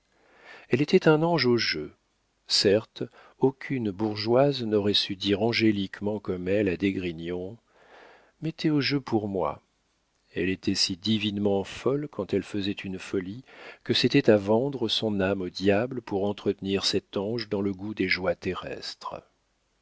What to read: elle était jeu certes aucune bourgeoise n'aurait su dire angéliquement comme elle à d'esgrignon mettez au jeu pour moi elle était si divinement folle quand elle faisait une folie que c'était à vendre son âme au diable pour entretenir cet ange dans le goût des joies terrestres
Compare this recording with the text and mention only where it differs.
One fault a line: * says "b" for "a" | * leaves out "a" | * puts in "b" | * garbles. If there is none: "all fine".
* puts in "un ange au"